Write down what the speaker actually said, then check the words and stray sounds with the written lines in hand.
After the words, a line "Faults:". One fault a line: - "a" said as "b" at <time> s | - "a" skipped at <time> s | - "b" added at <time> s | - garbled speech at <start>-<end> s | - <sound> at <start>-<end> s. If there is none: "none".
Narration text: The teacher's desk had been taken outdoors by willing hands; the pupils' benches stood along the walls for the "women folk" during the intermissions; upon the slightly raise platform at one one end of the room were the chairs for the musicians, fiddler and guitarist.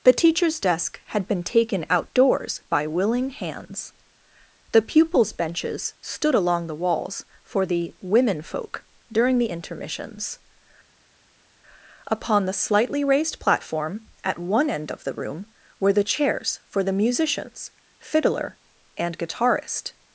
The teacher's desk had been taken outdoors by willing hands; the pupils' benches stood along the walls for the "women folk" during the intermissions; upon the slightly raised platform at one end of the room were the chairs for the musicians, fiddler and guitarist.
Faults:
- "raise" said as "raised" at 13.0 s
- "one" skipped at 14.7 s